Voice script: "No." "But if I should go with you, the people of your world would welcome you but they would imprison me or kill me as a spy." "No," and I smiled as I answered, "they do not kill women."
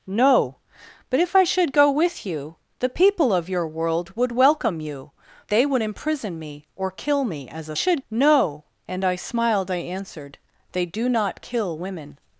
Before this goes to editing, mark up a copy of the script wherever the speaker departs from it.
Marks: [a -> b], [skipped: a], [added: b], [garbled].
"No." "But if I should go with you, the people of your world would welcome you [skipped: but] they would imprison me or kill me as a [spy." -> should] "No," and I smiled [skipped: as] I answered, "they do not kill women."